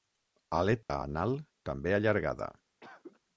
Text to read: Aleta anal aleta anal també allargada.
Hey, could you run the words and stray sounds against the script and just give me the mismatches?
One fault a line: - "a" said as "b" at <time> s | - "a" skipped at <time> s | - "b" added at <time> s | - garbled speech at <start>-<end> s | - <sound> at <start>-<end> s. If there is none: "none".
- dropout at 0.8-0.9 s
- "aleta anal" skipped at 1.4 s
- cough at 2.8-3.2 s